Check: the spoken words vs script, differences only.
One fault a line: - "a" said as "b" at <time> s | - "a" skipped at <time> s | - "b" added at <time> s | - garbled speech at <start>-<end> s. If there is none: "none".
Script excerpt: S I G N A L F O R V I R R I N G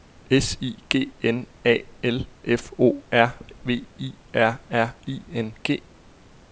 none